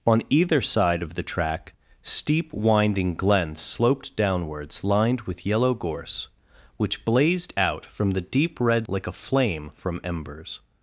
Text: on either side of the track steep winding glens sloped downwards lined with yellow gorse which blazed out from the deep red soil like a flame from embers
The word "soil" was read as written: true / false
false